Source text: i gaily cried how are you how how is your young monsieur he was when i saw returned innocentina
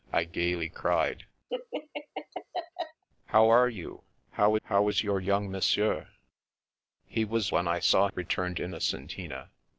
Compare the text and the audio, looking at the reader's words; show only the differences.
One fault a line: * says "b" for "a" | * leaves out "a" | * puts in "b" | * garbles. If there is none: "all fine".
all fine